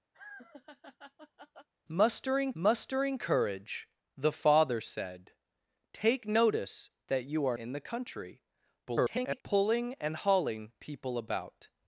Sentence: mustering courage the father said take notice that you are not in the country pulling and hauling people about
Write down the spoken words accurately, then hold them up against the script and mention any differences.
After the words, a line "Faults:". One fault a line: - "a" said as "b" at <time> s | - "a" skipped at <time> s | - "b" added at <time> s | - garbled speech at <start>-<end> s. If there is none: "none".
mustering mustering courage the father said take notice that you are in the country [garbled] pulling and hauling people about
Faults:
- "mustering" added at 2.5 s
- "not" skipped at 7.6 s
- garbled speech at 8.8-9.4 s